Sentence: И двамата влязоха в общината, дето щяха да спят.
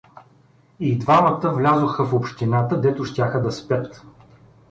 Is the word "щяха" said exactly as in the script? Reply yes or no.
yes